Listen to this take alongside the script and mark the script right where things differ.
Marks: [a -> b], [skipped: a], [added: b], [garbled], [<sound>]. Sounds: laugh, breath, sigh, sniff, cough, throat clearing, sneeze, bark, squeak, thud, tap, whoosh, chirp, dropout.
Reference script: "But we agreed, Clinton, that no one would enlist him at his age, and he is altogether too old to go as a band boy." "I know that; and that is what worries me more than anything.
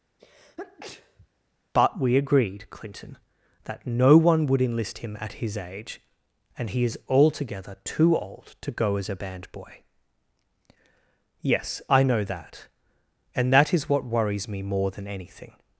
[sneeze] "But we agreed, Clinton, that no one would enlist him at his age, and he is altogether too old to go as a band boy." [added: Yes] "I know that; and that is what worries me more than anything.